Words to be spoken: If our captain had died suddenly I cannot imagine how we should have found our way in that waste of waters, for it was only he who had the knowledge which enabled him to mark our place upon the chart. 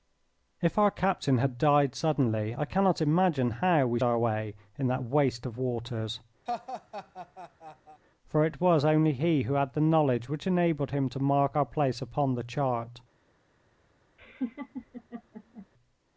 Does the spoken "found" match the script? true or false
false